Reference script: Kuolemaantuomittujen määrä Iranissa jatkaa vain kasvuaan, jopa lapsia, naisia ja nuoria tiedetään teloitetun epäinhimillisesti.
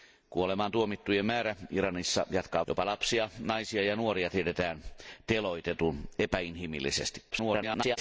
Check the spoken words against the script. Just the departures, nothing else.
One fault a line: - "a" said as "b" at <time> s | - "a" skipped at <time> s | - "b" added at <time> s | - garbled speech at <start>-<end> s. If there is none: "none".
- "vain kasvuaan" skipped at 2.6 s
- garbled speech at 7.3-8.0 s